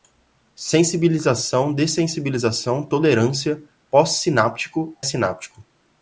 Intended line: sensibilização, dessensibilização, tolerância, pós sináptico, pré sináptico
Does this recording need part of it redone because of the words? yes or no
yes